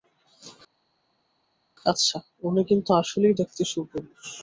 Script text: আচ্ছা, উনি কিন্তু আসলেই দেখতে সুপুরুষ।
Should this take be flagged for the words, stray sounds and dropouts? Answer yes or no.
no